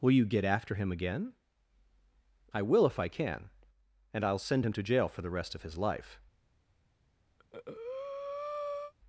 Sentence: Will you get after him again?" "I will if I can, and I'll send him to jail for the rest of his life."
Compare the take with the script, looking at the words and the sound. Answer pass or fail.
fail